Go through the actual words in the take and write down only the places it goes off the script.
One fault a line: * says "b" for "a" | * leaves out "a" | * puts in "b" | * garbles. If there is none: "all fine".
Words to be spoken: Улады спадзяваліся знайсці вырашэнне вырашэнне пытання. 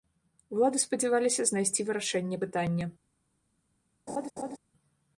* leaves out "вырашэнне"